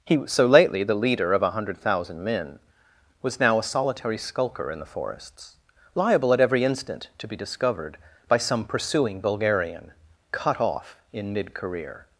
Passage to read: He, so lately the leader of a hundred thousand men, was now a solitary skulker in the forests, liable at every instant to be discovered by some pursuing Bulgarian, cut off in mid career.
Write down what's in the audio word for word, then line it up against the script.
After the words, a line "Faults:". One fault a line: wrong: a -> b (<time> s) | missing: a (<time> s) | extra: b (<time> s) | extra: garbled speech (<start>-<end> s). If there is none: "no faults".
He, so lately the leader of a hundred thousand men, was now a solitary skulker in the forests, liable at every instant to be discovered by some pursuing Bulgarian, cut off in mid career.
Faults:
no faults